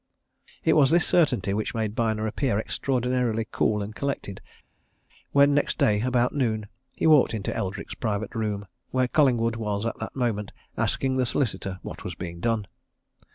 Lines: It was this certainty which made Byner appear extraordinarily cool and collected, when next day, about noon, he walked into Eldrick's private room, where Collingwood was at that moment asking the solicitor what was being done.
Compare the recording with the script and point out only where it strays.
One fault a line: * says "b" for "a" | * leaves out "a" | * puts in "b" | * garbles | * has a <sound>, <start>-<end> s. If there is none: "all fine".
all fine